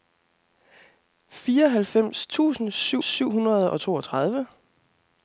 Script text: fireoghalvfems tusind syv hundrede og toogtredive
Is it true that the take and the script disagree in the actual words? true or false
true